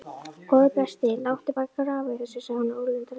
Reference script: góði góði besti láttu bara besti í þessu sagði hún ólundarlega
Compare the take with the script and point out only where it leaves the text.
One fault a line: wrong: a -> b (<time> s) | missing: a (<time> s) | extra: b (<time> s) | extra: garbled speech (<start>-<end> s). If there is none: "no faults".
missing: góði (0.7 s)
wrong: besti -> grafa (1.8 s)